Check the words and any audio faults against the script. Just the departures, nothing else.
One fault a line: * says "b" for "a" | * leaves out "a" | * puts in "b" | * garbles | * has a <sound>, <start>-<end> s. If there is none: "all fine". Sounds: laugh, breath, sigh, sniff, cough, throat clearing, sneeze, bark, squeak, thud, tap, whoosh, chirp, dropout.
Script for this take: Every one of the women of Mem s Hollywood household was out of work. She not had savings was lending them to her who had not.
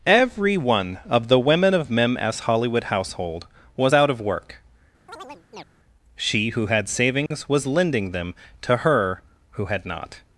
* has a chirp, 5.1-5.7 s
* says "who" for "not"
* has a dropout, 7.3-7.3 s